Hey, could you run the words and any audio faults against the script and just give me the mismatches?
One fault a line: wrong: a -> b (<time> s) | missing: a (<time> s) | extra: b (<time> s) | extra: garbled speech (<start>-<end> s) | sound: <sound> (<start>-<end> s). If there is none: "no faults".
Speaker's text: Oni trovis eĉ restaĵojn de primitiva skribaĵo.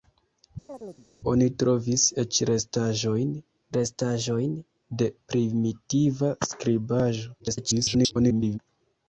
sound: chirp (0.7-1.1 s)
extra: restaĵojn (3.8 s)
extra: garbled speech (7.4-8.6 s)